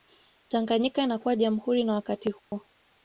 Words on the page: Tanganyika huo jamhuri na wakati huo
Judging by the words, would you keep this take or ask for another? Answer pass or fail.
fail